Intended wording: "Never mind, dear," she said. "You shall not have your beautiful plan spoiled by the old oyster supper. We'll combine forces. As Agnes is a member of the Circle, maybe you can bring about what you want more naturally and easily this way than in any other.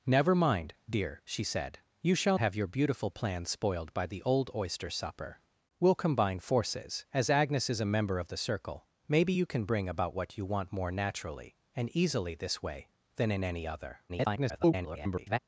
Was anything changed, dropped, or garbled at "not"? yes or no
yes